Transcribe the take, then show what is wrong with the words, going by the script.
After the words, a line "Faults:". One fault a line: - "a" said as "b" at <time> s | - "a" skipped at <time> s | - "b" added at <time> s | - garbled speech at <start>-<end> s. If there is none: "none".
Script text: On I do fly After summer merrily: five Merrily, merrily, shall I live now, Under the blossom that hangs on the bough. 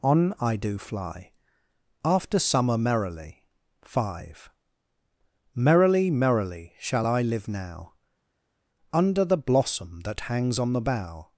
On I do fly After summer merrily: five Merrily, merrily, shall I live now, Under the blossom that hangs on the bough.
Faults:
none